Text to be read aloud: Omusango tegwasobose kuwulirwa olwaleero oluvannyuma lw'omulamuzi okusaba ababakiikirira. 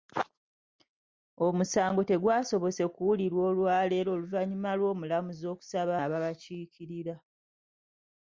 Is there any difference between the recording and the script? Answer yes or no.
no